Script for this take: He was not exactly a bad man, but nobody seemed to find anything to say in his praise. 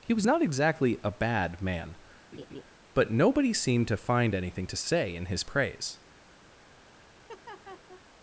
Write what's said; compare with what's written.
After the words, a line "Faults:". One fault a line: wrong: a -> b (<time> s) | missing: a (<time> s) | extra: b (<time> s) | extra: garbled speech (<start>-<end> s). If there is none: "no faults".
He was not exactly a bad man, but nobody seemed to find anything to say in his praise.
Faults:
no faults